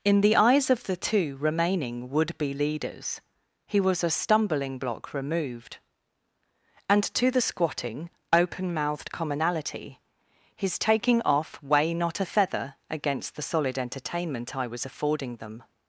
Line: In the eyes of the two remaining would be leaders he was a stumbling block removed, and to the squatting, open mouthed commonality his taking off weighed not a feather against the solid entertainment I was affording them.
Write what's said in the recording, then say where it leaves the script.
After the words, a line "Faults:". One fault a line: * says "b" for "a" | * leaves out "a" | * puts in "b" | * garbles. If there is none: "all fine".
In the eyes of the two remaining would be leaders he was a stumbling block removed, and to the squatting, open mouthed commonality his taking off weigh not a feather against the solid entertainment I was affording them.
Faults:
* says "weigh" for "weighed"